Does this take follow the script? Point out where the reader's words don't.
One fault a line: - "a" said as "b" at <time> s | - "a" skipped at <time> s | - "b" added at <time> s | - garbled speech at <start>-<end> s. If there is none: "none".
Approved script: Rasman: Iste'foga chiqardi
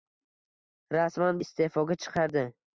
none